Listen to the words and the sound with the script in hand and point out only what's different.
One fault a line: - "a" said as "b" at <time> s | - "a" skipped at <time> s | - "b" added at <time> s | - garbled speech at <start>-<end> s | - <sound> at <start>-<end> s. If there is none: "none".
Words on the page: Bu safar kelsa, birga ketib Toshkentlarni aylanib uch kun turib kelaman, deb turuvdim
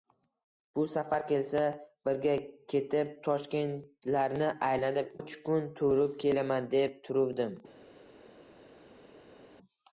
none